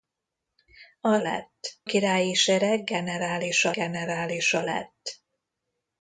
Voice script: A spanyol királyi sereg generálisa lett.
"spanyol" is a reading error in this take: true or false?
true